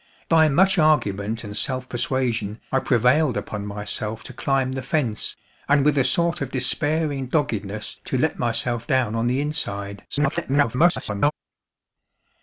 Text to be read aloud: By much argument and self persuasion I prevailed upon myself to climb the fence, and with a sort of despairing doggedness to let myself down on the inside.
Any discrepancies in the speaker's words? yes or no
yes